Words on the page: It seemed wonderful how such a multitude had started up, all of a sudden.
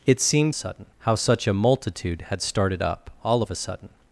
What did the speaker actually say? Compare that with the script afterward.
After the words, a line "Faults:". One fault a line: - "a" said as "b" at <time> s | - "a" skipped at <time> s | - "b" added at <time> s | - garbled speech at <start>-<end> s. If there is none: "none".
It seemed sudden how such a multitude had started up, all of a sudden.
Faults:
- "wonderful" said as "sudden" at 0.5 s